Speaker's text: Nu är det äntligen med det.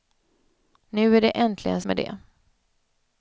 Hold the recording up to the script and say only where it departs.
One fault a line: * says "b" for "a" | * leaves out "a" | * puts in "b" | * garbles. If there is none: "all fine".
all fine